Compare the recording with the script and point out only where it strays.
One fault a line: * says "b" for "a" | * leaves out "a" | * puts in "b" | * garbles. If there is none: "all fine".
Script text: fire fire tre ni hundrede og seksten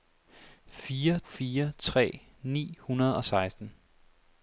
all fine